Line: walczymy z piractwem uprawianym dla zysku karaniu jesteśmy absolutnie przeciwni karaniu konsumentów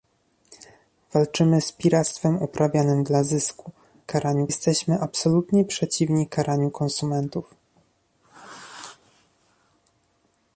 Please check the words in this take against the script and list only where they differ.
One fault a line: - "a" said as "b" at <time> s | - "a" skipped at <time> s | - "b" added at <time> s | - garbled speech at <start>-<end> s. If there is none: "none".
none